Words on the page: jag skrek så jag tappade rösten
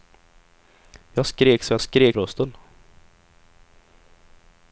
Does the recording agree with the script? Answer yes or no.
no